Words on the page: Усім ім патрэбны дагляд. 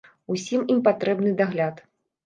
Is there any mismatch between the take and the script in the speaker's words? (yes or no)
no